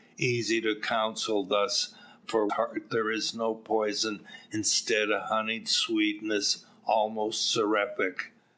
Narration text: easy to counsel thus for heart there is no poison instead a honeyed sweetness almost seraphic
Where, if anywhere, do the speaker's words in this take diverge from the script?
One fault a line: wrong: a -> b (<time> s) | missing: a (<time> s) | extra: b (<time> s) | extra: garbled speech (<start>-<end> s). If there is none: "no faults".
no faults